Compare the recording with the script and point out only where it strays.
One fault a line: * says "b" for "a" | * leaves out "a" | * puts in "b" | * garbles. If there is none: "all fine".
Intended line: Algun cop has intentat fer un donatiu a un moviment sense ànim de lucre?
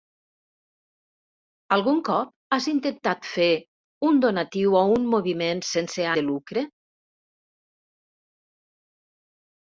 * leaves out "ànim"